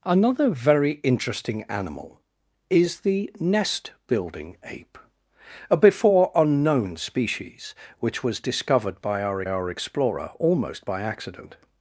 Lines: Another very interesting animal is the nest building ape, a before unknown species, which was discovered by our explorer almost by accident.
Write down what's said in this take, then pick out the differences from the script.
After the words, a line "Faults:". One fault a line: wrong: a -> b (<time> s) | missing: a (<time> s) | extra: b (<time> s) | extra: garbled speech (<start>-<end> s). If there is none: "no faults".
Another very interesting animal is the nest building ape, a before unknown species, which was discovered by our our explorer almost by accident.
Faults:
extra: our (9.5 s)